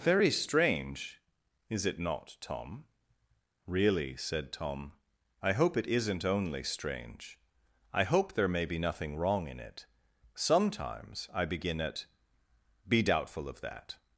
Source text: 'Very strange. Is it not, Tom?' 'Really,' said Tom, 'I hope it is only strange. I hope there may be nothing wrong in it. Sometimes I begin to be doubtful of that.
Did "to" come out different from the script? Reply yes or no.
yes